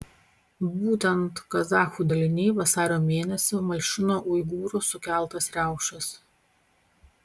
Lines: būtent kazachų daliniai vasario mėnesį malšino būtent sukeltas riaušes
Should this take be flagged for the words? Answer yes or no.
yes